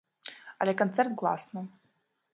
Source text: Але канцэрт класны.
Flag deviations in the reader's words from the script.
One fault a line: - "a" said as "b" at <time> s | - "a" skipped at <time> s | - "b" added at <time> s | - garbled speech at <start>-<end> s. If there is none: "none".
none